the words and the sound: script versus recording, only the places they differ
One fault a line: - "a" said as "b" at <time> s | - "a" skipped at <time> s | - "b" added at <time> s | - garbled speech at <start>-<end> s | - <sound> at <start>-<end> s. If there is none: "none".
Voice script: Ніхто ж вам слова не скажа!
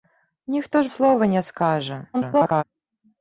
- "вам" skipped at 0.9 s
- garbled speech at 2.1-2.6 s